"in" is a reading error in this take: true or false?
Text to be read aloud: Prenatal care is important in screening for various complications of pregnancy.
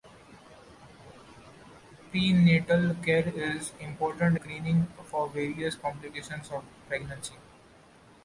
true